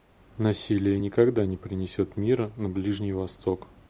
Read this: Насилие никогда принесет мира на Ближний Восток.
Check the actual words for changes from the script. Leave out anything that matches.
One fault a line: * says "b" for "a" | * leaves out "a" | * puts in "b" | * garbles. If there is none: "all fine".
* puts in "не"